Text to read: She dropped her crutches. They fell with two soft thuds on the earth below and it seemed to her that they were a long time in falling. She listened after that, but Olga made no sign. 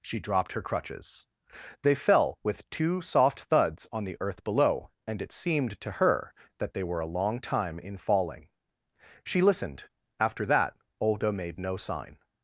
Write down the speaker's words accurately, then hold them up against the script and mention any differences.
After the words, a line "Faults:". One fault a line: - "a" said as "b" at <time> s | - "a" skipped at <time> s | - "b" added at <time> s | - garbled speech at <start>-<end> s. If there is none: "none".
She dropped her crutches. They fell with two soft thuds on the earth below and it seemed to her that they were a long time in falling. She listened after that, Olga made no sign.
Faults:
- "but" skipped at 10.7 s